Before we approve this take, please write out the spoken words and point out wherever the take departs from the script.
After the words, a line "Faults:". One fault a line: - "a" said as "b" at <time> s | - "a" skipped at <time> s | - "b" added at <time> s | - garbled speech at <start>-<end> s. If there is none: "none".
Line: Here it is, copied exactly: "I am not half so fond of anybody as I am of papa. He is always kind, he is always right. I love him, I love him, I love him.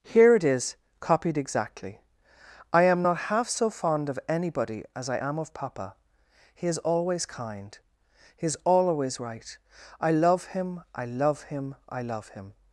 Here it is, copied exactly: "I am not half so fond of anybody as I am of papa. He is always kind, he is always right. I love him, I love him, I love him.
Faults:
none